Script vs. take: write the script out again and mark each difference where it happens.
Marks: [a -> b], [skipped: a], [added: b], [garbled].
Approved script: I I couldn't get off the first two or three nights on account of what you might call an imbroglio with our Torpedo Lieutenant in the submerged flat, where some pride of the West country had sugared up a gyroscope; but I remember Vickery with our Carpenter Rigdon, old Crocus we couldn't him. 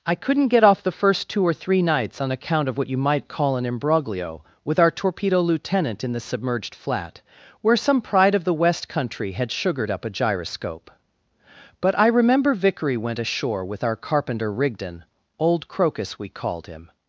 I [skipped: I] couldn't get off the first two or three nights on account of what you might call an imbroglio with our Torpedo Lieutenant in the submerged flat, where some pride of the West country had sugared up a gyroscope; but I remember Vickery [added: went ashore] with our Carpenter Rigdon, old Crocus we [couldn't -> called] him.